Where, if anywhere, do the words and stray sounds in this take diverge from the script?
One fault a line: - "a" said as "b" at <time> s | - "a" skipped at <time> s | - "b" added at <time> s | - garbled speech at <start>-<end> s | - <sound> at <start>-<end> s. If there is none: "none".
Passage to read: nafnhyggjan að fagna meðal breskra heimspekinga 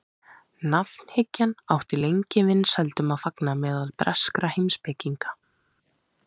- "átti lengi vinsældum" added at 1.8 s